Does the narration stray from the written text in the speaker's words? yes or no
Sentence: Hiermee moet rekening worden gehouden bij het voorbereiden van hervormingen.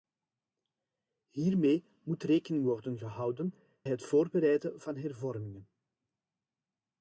yes